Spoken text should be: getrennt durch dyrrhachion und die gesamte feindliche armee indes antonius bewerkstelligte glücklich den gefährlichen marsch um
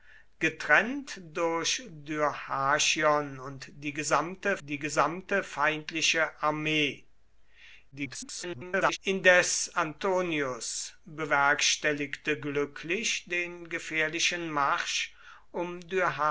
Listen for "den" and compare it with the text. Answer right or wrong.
right